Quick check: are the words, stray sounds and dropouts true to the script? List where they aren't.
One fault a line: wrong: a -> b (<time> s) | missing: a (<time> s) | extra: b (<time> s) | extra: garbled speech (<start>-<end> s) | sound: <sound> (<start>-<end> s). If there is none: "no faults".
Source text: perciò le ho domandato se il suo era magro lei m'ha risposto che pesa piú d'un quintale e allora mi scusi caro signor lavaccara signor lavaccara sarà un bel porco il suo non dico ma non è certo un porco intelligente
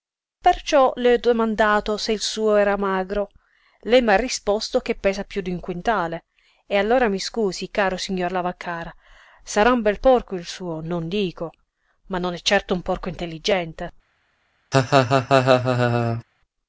missing: signor lavaccara (8.9 s)
sound: laugh (14.7-16.2 s)